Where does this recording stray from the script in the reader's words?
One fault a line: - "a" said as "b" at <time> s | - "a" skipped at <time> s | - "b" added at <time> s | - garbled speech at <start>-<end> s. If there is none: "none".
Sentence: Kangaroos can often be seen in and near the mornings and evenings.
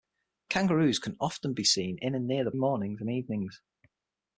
none